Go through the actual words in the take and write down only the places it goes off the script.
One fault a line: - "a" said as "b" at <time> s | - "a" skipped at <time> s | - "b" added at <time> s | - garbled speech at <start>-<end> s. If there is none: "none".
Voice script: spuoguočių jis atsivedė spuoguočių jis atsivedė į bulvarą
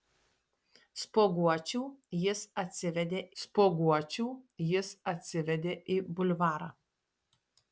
none